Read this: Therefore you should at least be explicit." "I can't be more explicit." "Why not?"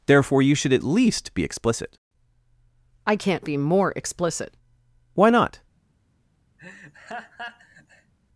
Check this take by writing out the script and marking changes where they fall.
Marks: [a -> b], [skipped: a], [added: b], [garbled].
Therefore you should at least be explicit." "I can't be more explicit." "Why not?"